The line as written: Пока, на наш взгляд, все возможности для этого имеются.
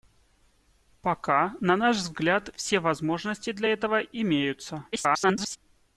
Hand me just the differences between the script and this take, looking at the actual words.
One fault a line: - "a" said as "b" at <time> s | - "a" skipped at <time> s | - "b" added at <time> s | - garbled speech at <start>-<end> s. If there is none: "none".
- garbled speech at 4.9-5.6 s